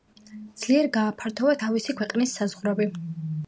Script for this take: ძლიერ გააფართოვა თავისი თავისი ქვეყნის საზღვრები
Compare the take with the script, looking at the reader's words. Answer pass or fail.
fail